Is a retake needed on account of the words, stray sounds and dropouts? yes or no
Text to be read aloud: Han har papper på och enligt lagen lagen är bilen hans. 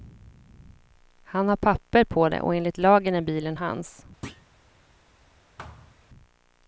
yes